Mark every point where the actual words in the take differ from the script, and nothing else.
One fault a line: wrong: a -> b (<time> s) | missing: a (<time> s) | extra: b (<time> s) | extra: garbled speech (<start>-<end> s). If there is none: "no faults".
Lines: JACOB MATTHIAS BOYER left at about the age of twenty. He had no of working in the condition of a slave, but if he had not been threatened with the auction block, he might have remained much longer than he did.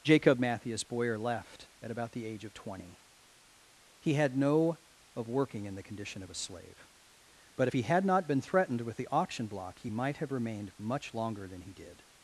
no faults